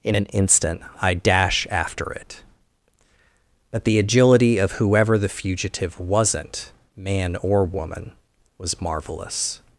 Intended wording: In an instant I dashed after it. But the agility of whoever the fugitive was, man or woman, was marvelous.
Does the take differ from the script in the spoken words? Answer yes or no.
yes